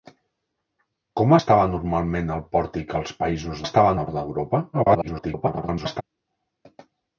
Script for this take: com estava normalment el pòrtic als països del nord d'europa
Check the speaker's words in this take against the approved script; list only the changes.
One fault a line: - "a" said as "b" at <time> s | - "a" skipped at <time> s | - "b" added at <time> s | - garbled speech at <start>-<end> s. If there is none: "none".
- "del" said as "estava" at 3.6 s
- garbled speech at 4.7-6.0 s